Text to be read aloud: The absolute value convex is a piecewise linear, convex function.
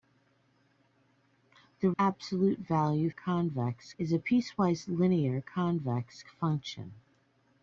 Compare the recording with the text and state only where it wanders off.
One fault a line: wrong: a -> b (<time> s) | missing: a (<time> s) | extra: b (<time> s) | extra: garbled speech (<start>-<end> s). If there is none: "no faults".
no faults